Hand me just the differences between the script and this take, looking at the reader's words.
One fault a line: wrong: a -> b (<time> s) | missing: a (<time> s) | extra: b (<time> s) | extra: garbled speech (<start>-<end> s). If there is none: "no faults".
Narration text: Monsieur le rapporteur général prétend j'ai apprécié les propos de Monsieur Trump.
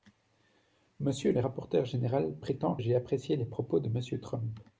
no faults